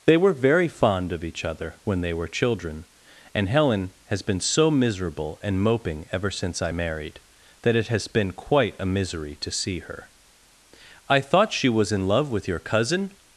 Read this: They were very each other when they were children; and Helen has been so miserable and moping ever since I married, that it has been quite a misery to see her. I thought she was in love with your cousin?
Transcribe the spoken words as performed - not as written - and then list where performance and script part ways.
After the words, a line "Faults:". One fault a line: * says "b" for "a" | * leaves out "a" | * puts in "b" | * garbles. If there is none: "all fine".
They were very fond of each other when they were children; and Helen has been so miserable and moping ever since I married, that it has been quite a misery to see her. I thought she was in love with your cousin?
Faults:
* puts in "fond of"